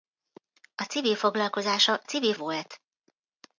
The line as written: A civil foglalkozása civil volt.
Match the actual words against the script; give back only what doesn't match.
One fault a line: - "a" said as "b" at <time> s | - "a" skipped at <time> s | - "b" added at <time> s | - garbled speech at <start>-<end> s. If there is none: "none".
none